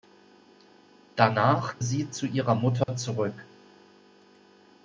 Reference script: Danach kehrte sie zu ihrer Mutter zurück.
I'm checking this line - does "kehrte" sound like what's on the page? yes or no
no